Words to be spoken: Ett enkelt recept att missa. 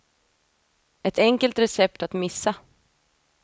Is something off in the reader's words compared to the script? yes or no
no